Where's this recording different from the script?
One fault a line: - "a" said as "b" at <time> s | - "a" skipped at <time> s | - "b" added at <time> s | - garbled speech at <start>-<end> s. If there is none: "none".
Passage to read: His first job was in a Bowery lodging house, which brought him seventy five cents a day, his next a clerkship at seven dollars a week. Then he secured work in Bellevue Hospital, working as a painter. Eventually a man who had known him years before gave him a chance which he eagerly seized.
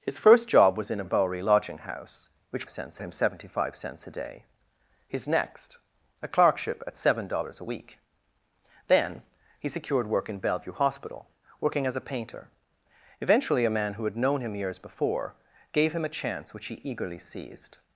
- "brought" said as "cents" at 2.7 s